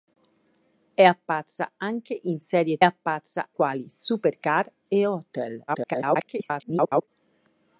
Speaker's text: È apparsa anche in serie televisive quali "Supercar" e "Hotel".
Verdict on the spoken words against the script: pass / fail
fail